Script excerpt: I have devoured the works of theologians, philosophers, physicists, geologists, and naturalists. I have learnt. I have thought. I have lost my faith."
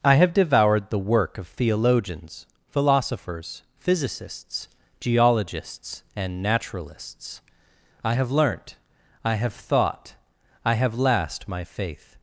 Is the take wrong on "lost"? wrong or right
wrong